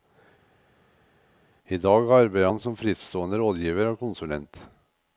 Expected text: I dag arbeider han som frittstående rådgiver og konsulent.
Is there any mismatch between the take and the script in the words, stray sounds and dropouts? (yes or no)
no